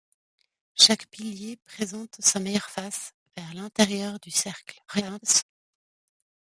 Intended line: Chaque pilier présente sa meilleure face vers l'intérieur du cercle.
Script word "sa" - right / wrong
right